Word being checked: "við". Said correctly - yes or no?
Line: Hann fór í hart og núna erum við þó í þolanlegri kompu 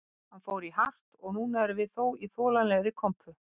yes